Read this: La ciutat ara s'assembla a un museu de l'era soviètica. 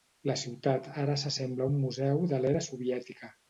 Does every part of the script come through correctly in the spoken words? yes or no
yes